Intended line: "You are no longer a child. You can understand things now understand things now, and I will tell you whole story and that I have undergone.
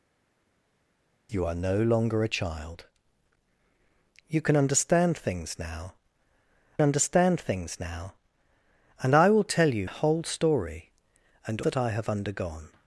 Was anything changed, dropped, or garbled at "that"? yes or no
no